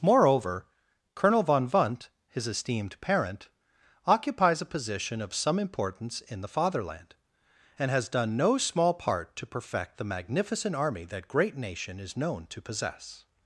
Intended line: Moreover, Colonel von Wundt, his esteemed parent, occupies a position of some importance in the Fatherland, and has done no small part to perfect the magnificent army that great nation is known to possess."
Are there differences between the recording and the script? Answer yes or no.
no